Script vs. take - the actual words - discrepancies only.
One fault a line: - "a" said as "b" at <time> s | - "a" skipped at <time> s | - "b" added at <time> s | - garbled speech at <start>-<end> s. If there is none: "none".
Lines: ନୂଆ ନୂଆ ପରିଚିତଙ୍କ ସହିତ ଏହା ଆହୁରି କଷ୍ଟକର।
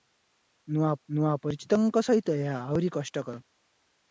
none